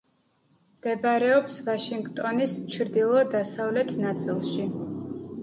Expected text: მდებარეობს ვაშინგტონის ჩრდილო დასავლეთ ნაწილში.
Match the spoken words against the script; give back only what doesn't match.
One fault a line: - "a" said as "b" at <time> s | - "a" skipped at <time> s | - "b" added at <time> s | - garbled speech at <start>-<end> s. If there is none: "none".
none